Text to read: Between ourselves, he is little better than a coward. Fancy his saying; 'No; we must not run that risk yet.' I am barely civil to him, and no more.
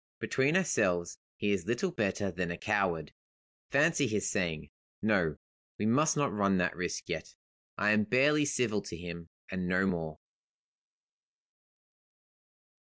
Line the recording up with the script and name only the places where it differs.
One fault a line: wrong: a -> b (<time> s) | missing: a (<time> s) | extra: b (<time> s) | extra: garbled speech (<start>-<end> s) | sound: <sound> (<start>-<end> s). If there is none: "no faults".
no faults